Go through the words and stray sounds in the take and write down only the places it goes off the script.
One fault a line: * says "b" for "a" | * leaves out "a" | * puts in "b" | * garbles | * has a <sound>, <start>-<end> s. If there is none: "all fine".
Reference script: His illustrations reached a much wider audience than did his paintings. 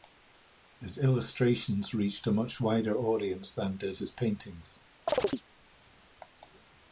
* has a chirp, 5.1-5.4 s